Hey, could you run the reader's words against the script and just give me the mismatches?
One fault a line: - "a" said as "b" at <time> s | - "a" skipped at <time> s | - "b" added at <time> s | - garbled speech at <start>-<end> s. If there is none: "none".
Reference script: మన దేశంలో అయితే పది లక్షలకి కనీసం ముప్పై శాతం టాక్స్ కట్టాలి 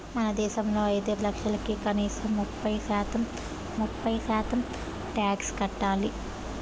- "పది" skipped at 1.1 s
- "ముప్పై శాతం" added at 3.8 s